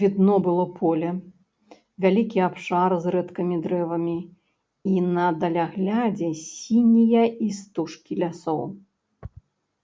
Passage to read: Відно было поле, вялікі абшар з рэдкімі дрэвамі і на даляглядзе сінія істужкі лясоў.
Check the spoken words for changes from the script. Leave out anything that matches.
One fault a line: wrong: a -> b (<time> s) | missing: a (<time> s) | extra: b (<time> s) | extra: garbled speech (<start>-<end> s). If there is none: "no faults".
no faults